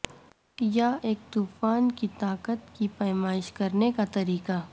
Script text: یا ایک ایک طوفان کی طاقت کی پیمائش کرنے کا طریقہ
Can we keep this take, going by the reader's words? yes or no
no